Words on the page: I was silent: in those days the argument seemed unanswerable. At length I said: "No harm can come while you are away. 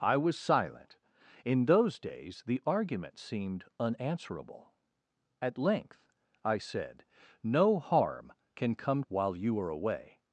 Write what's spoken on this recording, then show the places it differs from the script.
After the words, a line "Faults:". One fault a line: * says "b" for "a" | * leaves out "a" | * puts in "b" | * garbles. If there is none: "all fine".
I was silent: in those days the argument seemed unanswerable. At length I said: "No harm can come while you are away.
Faults:
all fine